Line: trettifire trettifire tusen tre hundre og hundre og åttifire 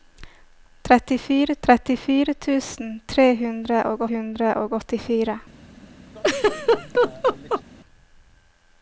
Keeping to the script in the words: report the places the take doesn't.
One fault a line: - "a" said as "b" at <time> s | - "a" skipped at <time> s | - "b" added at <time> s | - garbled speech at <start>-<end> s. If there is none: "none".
none